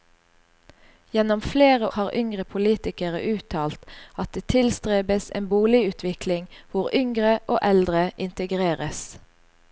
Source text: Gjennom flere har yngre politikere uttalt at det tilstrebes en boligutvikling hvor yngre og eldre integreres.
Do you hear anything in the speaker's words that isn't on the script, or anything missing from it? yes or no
no